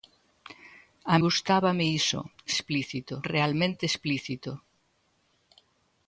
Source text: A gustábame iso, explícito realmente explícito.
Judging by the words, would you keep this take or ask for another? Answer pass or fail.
pass